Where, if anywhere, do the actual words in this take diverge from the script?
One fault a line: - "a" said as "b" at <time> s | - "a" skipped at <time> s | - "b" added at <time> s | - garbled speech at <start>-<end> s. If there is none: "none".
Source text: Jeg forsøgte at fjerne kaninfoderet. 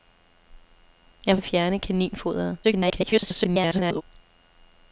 - "forsøgte" skipped at 1.4 s
- garbled speech at 2.6-4.0 s